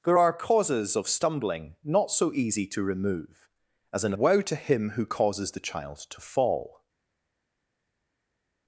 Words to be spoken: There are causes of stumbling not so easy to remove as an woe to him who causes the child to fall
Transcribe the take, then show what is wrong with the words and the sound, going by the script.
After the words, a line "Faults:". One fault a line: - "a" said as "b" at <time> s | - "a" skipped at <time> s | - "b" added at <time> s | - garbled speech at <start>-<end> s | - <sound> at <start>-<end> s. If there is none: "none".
There are causes of stumbling not so easy to remove as an woe to him who causes the child to fall
Faults:
none